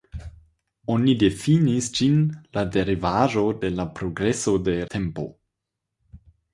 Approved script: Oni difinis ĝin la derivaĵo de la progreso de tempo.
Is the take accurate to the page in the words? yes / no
yes